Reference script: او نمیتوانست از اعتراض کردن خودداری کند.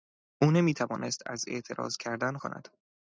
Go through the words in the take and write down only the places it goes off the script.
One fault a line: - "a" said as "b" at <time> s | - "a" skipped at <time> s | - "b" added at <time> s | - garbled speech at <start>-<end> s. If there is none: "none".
- "خودداری" skipped at 2.4 s